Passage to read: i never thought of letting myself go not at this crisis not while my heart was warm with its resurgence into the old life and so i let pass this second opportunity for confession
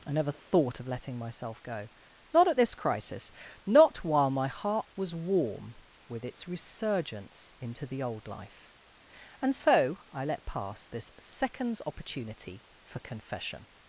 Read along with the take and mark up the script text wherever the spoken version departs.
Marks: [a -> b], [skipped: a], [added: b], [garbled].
i never thought of letting myself go not at this crisis not while my heart was warm with its resurgence into the old life and so i let pass this [second -> seconds] opportunity for confession